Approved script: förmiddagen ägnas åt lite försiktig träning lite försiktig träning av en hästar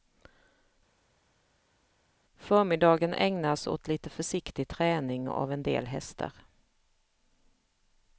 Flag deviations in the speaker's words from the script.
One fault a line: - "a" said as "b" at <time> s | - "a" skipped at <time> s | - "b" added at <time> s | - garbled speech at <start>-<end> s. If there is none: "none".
- "lite försiktig träning" skipped at 5.3 s
- "del" added at 5.6 s